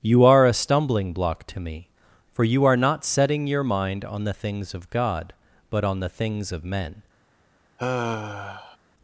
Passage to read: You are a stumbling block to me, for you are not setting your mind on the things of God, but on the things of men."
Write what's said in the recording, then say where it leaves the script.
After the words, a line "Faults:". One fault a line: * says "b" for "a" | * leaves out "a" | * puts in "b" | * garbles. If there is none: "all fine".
You are a stumbling block to me, for you are not setting your mind on the things of God, but on the things of men."
Faults:
all fine